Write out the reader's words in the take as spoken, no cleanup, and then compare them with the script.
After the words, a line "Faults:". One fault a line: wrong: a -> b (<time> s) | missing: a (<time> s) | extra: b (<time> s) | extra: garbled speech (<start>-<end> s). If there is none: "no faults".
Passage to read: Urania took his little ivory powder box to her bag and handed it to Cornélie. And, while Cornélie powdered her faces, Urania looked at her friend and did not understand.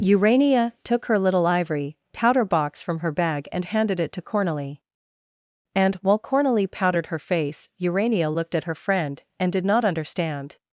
Urania took her little ivory powder box from her bag and handed it to Cornélie. And, while Cornélie powdered her face, Urania looked at her friend and did not understand.
Faults:
wrong: his -> her (1.1 s)
wrong: to -> from (2.8 s)
wrong: faces -> face (7.2 s)